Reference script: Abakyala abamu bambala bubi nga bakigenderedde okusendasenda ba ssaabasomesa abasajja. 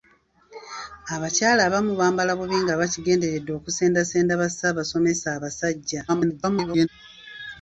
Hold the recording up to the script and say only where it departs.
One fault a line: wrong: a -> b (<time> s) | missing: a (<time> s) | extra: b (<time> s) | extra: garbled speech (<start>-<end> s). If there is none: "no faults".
extra: garbled speech (6.1-6.9 s)